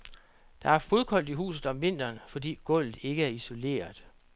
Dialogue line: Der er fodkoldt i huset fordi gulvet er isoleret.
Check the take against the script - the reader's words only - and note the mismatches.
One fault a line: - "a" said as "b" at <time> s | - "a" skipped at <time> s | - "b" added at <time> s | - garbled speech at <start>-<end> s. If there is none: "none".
- "om vinteren" added at 1.7 s
- "ikke" added at 3.0 s